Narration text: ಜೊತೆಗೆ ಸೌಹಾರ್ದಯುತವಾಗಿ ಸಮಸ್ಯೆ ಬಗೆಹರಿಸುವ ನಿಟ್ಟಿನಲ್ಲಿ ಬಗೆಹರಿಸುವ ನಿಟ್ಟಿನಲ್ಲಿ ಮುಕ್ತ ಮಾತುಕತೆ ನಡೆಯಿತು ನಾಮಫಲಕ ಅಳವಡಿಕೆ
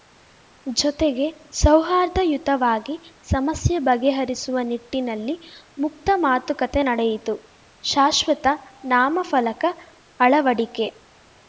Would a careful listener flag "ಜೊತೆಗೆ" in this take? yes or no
no